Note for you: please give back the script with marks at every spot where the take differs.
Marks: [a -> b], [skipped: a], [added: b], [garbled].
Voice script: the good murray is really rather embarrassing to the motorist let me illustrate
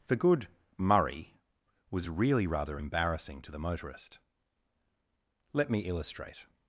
the good murray [is -> was] really rather embarrassing to the motorist let me illustrate